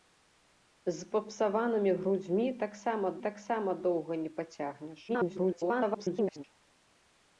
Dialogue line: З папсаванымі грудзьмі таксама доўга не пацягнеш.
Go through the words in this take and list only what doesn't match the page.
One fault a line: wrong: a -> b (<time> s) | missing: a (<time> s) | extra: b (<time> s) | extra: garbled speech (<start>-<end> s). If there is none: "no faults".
extra: таксама (3.3 s)
extra: garbled speech (5.1-6.4 s)